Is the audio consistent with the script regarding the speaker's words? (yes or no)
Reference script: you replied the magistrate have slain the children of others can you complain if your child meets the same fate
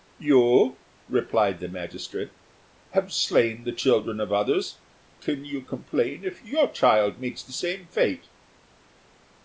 yes